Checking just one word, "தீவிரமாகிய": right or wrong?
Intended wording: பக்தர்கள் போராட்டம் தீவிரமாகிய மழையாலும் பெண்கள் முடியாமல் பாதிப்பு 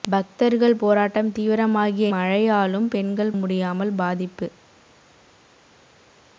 right